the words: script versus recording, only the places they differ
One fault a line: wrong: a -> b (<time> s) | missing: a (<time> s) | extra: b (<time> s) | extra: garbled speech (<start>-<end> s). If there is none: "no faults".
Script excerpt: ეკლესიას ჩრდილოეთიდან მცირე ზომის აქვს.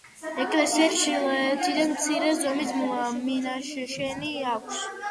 extra: მინაშენი (3.3 s)